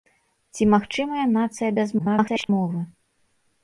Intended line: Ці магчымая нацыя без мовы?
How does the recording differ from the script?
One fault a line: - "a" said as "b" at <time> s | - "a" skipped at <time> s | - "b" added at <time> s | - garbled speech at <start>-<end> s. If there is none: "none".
- garbled speech at 2.0-2.5 s